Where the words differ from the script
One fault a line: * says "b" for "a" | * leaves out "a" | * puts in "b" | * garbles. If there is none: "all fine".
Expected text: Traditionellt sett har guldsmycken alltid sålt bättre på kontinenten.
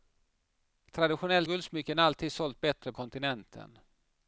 * leaves out "sett har"
* leaves out "på"